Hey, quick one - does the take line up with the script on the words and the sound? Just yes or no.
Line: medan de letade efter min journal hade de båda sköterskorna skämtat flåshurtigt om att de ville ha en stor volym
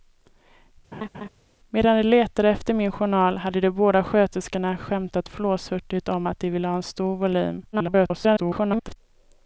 no